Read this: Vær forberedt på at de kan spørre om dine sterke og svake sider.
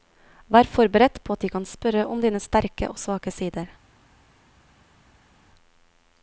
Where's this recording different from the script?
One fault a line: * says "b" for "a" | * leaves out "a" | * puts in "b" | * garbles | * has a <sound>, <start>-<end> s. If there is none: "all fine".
all fine